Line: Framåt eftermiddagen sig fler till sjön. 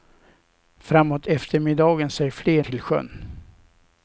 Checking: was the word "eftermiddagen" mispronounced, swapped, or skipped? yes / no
no